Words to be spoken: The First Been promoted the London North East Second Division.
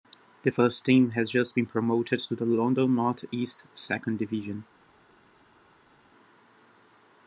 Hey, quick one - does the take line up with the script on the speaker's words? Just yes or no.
no